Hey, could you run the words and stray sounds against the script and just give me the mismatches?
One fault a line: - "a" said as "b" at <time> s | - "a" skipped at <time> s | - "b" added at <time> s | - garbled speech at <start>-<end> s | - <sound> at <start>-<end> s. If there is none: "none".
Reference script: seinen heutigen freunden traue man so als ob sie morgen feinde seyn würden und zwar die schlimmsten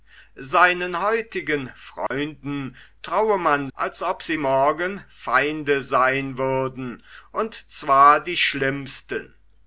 - dropout at 2.1-2.1 s
- "so" skipped at 3.7 s